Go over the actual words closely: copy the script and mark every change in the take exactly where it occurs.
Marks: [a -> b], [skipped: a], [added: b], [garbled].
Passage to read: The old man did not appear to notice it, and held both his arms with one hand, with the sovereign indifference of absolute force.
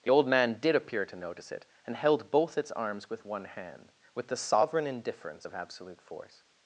The old man did [skipped: not] appear to notice it, and held both [his -> its] arms with one hand, with the sovereign indifference of absolute force.